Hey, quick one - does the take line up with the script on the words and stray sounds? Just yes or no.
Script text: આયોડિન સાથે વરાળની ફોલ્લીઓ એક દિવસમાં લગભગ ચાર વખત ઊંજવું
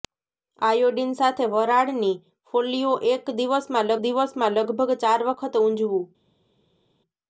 no